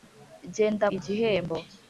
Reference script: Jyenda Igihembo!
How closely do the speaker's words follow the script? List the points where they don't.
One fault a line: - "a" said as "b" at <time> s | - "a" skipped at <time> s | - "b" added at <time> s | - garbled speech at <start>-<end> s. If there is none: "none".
none